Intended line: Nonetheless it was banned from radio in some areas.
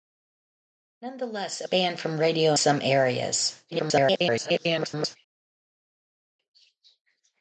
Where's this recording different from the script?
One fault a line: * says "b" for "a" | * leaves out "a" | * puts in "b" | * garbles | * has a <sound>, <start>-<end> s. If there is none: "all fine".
* leaves out "was"
* leaves out "in"
* garbles